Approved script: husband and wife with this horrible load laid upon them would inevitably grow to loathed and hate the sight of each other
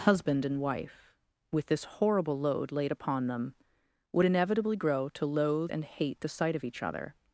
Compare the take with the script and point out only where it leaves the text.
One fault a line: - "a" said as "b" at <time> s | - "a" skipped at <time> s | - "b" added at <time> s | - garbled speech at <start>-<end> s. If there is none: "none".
- "loathed" said as "loathe" at 5.2 s